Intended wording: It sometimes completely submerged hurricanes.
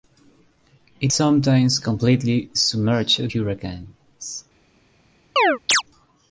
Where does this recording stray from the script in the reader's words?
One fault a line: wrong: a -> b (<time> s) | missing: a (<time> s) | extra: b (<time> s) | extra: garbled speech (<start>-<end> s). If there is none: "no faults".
no faults